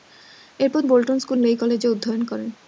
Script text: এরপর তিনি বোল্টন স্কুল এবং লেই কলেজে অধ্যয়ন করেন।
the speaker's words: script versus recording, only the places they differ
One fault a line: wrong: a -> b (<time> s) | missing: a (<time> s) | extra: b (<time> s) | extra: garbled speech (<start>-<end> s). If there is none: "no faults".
missing: তিনি (0.8 s)
missing: এবং (1.4 s)